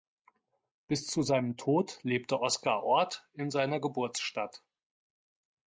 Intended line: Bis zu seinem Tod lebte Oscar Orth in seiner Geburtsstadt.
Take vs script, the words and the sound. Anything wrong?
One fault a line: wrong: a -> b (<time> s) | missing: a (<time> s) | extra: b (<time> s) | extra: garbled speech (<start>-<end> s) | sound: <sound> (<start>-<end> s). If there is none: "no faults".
no faults